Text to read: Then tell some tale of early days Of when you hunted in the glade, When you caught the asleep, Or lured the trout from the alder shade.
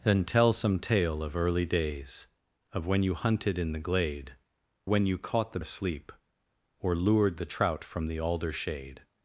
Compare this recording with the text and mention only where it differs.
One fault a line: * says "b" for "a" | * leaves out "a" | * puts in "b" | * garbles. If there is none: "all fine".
all fine